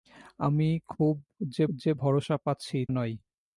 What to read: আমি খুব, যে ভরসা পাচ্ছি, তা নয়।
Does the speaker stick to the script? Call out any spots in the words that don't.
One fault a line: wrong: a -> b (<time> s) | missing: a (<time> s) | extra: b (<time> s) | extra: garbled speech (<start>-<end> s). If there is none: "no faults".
extra: যে (1.8 s)
missing: তা (2.8 s)